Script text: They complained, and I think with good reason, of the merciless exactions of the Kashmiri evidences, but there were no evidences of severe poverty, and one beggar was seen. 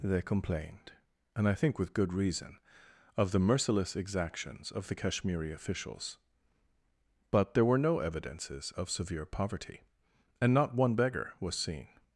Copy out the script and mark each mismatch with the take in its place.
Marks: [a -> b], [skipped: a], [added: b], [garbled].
They complained, and I think with good reason, of the merciless exactions of the Kashmiri [evidences, -> officials] but there were no evidences of severe poverty, and [added: not] one beggar was seen.